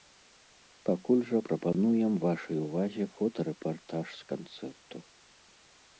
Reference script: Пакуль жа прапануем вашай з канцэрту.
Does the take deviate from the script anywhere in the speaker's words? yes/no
yes